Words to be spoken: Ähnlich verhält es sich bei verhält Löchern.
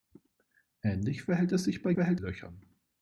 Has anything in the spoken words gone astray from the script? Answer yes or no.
no